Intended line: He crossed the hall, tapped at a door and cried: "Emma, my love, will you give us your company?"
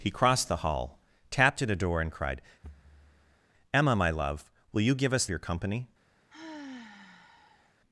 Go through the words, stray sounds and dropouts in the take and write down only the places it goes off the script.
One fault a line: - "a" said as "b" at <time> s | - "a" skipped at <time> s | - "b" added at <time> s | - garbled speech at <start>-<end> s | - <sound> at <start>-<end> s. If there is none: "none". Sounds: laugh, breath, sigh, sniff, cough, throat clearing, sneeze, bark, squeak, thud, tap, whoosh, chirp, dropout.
- thud at 2.6-3.4 s
- sigh at 6.3-7.7 s